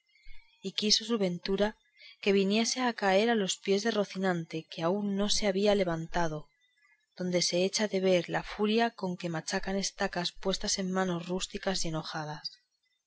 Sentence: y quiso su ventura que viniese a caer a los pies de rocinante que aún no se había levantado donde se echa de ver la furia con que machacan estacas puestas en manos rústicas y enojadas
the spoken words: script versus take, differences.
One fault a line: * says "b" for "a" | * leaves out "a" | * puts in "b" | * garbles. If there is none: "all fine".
all fine